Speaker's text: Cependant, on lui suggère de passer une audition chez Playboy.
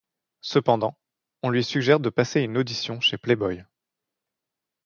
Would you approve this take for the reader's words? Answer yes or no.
yes